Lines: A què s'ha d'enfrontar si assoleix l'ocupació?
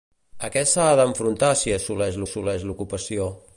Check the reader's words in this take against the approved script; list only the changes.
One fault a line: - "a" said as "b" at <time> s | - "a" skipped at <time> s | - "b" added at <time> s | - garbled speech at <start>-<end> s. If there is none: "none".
- "assoleix" added at 2.3 s